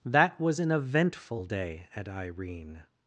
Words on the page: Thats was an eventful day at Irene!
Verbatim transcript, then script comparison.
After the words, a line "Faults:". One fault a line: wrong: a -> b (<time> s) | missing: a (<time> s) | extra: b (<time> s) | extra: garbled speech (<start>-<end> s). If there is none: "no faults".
That was an eventful day at Irene!
Faults:
wrong: Thats -> That (0.1 s)